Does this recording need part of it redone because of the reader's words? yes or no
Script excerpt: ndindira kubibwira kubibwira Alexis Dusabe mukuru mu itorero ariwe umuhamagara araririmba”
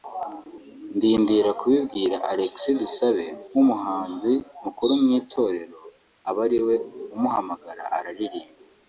yes